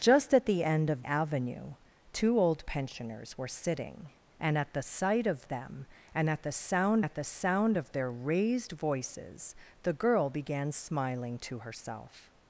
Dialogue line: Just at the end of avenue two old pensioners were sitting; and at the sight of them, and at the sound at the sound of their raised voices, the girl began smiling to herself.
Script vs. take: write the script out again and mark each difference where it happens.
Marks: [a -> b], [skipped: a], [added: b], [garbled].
Just at the end of avenue two old pensioners were sitting; and at the sight of them, and at the sound at the sound of their raised voices, the girl began smiling to herself.